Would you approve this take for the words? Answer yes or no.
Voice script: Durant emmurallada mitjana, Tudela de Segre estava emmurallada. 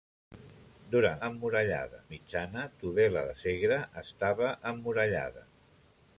yes